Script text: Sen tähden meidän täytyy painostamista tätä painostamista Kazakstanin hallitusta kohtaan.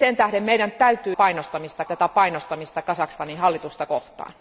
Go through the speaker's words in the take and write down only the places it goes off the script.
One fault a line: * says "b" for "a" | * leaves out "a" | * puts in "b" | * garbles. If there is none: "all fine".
all fine